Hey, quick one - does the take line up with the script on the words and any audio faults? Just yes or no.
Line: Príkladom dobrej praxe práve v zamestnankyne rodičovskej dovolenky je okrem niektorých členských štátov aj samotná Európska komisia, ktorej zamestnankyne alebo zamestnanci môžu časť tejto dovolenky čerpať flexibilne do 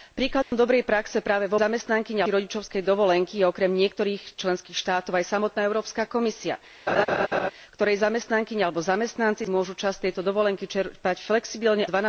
no